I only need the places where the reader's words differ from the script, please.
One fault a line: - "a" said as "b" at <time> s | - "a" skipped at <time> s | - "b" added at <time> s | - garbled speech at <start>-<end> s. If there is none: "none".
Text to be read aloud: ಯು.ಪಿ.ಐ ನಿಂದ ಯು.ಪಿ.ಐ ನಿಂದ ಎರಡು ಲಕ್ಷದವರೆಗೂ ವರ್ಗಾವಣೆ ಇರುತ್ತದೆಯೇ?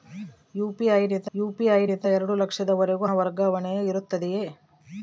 none